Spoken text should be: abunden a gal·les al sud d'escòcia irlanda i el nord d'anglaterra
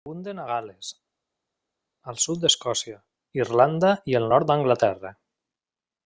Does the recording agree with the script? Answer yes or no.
yes